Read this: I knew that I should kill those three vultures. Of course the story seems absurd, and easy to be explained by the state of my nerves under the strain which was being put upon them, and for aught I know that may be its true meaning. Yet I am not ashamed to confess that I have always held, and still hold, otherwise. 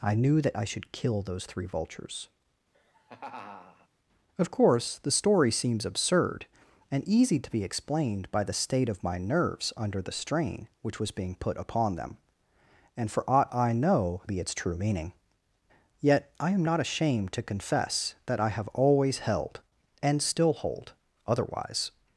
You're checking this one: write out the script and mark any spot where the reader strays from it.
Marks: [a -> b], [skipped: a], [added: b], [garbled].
I knew that I should kill those three vultures. Of course the story seems absurd, and easy to be explained by the state of my nerves under the strain which was being put upon them, and for aught I know [skipped: that may] be its true meaning. Yet I am not ashamed to confess that I have always held, and still hold, otherwise.